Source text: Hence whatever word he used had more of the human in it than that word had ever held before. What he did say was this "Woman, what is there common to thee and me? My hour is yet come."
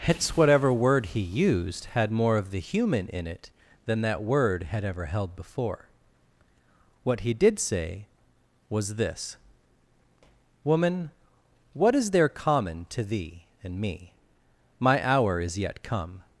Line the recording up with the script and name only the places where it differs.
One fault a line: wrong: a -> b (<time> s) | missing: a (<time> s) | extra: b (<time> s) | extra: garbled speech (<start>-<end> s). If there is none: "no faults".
no faults